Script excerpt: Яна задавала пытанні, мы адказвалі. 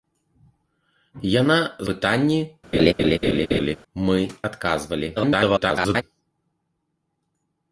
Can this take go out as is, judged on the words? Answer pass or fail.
fail